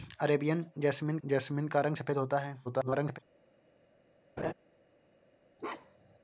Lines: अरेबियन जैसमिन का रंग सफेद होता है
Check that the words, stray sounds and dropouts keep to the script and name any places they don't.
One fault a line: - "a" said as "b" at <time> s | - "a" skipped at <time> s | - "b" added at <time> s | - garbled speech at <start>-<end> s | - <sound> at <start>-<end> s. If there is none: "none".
- "जैसमिन" added at 1.2 s
- garbled speech at 2.6-3.2 s
- laugh at 4.4-4.5 s
- bark at 5.6-6.2 s